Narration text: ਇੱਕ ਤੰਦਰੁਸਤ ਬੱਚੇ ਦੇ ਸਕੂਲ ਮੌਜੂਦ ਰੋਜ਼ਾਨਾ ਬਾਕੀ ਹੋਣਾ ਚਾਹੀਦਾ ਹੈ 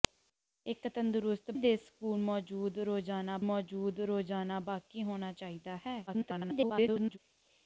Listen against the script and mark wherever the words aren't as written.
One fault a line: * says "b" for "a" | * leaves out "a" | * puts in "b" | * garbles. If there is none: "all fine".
* leaves out "ਬੱਚੇ"
* puts in "ਮੌਜੂਦ ਰੋਜ਼ਾਨਾ"
* garbles